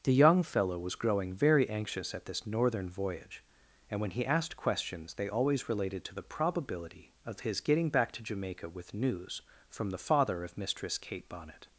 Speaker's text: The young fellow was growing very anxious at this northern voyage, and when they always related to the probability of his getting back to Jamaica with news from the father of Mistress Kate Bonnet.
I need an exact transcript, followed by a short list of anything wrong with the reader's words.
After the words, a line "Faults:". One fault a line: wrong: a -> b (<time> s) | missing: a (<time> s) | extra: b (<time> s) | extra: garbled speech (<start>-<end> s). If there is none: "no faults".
The young fellow was growing very anxious at this northern voyage, and when he asked questions they always related to the probability of his getting back to Jamaica with news from the father of Mistress Kate Bonnet.
Faults:
extra: he asked questions (4.1 s)